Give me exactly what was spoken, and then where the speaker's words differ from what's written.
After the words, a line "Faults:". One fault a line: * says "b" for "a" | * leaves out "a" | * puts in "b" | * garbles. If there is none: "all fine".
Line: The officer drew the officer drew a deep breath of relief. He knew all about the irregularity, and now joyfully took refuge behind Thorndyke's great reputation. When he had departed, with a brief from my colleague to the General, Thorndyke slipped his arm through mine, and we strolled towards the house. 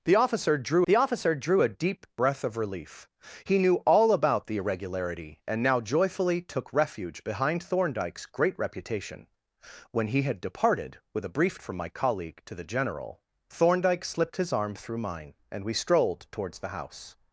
The officer drew the officer drew a deep breath of relief. He knew all about the irregularity, and now joyfully took refuge behind Thorndyke's great reputation. When he had departed, with a brief from my colleague to the General, Thorndyke slipped his arm through mine, and we strolled towards the house.
Faults:
all fine